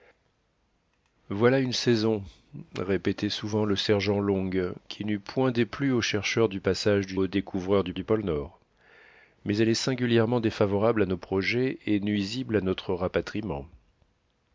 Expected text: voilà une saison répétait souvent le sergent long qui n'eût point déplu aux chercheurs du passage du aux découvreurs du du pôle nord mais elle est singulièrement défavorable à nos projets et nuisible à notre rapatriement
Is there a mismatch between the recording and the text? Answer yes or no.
no